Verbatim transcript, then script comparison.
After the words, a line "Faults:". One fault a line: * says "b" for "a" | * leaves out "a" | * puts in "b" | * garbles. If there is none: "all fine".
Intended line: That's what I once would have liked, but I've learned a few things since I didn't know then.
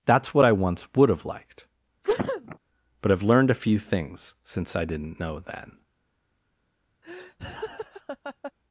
That's what I once would have liked, but I've learned a few things since I didn't know then.
Faults:
all fine